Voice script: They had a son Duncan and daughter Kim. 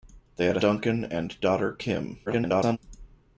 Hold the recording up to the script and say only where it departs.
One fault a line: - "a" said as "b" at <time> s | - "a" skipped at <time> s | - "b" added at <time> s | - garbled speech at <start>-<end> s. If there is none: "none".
- "son" skipped at 0.6 s
- garbled speech at 2.3-2.8 s